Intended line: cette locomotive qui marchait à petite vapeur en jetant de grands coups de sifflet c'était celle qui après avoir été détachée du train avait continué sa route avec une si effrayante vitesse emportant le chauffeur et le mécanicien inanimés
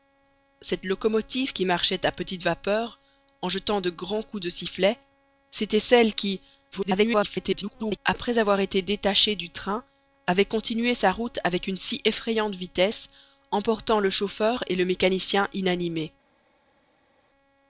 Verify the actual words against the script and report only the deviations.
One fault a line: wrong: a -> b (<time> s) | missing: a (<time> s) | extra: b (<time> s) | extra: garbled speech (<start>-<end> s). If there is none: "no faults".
extra: garbled speech (6.7-8.0 s)